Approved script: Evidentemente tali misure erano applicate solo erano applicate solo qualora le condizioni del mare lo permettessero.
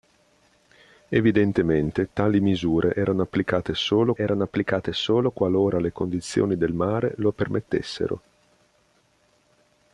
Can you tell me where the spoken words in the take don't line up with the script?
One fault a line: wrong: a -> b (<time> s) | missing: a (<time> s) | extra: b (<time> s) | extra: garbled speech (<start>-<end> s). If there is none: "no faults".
no faults